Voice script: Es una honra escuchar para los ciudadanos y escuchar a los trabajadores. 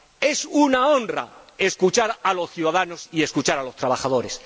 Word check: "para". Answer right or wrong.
wrong